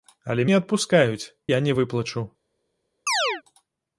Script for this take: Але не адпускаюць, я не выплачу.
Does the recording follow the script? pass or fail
pass